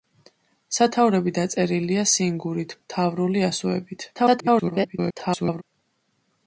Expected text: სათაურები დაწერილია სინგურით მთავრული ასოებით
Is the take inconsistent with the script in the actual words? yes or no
yes